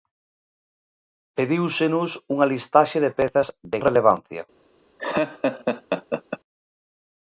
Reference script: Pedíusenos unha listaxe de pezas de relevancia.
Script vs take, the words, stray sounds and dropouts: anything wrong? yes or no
yes